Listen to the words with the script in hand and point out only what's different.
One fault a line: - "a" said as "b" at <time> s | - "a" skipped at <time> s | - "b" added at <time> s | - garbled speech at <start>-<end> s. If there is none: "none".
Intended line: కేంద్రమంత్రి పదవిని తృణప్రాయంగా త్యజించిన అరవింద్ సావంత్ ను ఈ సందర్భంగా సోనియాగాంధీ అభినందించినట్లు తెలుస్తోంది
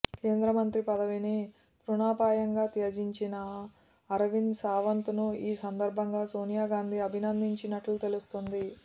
none